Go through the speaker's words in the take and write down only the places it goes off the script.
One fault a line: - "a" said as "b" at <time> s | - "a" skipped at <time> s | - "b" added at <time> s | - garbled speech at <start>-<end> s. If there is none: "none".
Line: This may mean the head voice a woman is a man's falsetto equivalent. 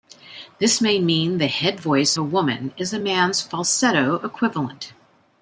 none